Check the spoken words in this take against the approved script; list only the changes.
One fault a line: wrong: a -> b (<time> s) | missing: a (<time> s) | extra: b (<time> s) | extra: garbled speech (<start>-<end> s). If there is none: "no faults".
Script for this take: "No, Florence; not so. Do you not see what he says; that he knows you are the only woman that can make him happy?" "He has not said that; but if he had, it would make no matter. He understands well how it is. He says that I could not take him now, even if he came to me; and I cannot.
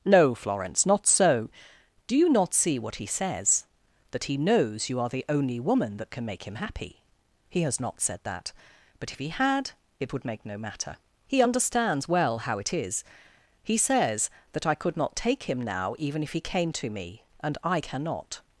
no faults